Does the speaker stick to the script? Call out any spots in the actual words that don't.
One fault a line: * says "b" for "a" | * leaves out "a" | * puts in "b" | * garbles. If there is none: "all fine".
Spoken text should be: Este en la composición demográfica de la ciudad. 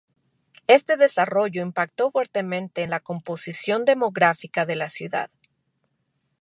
* puts in "desarrollo impactó fuertemente"